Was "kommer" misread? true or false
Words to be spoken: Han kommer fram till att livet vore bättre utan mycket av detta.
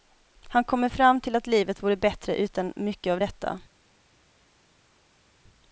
false